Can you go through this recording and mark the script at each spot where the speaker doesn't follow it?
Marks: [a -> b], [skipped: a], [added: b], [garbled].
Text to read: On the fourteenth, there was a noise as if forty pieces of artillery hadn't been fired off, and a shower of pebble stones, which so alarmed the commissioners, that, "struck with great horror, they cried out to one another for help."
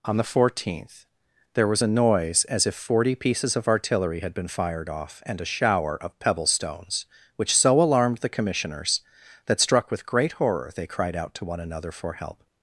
On the fourteenth, there was a noise as if forty pieces of artillery [hadn't -> had] been fired off, and a shower of pebble stones, which so alarmed the commissioners, that, "struck with great horror, they cried out to one another for help."